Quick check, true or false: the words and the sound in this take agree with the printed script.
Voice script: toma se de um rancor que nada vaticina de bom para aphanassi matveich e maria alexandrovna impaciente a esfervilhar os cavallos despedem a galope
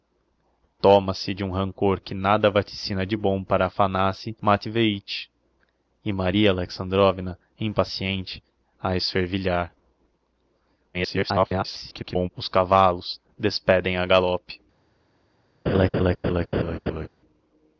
false